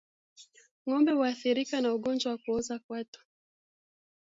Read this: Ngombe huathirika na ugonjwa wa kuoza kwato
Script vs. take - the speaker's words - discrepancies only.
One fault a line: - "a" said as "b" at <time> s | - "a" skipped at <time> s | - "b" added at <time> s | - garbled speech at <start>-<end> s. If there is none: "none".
none